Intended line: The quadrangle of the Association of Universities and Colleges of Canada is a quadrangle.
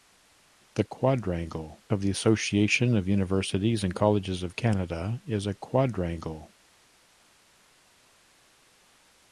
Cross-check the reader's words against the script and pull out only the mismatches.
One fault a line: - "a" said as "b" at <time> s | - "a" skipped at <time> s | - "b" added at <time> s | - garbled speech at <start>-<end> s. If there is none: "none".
none